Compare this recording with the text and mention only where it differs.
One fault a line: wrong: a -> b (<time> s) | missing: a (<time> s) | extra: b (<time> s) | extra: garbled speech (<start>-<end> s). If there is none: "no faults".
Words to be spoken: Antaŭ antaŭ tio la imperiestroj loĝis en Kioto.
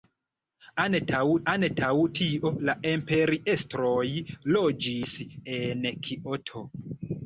no faults